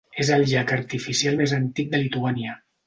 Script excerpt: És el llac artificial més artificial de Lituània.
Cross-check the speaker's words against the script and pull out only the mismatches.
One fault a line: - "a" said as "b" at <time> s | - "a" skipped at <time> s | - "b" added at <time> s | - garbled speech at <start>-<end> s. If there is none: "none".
- "artificial" said as "antic" at 1.6 s